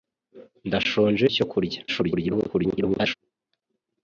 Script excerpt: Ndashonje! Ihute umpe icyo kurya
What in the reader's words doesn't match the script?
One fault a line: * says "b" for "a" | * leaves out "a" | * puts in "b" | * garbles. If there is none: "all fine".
* leaves out "Ihute umpe"
* garbles